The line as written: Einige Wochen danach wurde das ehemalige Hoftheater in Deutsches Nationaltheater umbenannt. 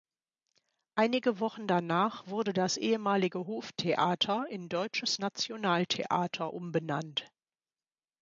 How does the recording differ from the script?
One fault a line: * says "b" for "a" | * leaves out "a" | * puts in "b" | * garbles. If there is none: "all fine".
all fine